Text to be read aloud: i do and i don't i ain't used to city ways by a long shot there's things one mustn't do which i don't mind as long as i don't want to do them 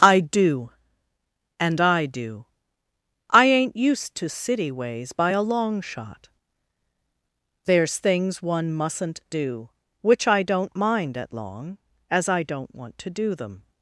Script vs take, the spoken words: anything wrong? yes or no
yes